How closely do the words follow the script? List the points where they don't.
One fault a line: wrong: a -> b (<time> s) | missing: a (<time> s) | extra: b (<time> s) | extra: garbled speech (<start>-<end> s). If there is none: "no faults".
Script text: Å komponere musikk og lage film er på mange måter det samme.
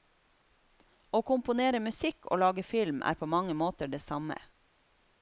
no faults